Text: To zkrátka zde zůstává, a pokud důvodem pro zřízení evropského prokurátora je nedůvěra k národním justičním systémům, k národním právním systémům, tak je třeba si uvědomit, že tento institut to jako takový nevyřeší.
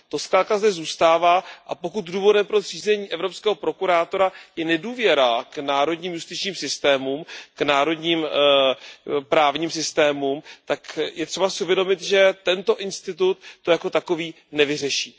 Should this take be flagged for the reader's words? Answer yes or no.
no